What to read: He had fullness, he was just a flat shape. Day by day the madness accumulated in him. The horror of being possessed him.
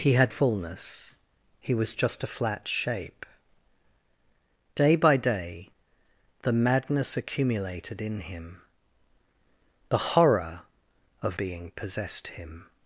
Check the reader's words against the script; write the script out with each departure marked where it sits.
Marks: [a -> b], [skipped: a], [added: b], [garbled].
He had fullness, he was just a flat shape. Day by day the madness accumulated in him. The horror of being possessed him.